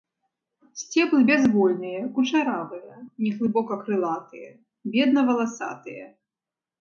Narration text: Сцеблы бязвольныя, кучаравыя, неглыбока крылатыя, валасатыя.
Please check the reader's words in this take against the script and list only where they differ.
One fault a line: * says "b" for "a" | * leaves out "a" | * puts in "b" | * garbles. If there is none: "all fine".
* puts in "бедна"